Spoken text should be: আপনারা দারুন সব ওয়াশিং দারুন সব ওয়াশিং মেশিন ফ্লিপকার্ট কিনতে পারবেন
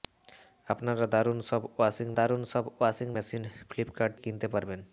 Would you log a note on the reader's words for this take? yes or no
no